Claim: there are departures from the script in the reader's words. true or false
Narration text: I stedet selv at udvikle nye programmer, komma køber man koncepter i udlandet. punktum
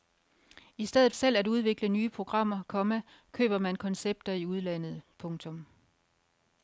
false